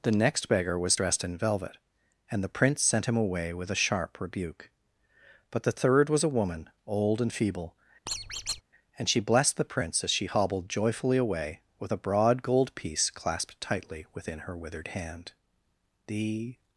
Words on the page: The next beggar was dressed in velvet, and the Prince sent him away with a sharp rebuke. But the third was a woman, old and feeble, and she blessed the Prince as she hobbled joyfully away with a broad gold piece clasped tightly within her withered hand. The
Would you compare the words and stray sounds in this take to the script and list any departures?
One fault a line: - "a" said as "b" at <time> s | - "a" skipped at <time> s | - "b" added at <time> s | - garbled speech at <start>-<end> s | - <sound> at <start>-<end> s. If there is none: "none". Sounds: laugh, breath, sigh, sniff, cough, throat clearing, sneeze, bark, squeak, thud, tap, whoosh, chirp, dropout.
- squeak at 8.1-8.6 s